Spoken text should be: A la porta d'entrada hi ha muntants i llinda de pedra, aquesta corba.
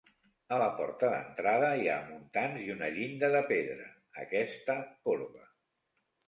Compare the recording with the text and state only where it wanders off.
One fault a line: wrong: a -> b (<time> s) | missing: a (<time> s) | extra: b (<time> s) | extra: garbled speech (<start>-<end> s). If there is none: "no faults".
extra: una (2.8 s)